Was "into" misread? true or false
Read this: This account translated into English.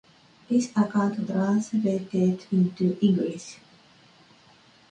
false